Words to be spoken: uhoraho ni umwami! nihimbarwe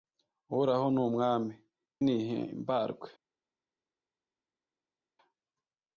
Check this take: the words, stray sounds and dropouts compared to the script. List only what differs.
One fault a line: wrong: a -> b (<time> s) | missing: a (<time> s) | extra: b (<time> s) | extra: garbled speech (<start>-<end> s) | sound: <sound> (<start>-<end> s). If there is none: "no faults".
no faults